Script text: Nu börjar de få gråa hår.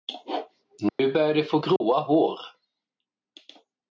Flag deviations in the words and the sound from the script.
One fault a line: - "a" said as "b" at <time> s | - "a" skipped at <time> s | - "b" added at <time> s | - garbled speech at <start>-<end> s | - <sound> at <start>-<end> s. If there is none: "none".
- dropout at 0.9-1.0 s
- dropout at 1.8-1.8 s